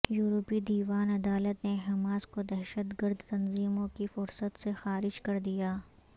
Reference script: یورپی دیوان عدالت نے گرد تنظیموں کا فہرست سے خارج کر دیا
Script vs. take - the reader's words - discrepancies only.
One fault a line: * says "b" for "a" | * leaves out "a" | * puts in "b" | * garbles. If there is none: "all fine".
* puts in "حماس کو دہشت"
* says "کی" for "کا"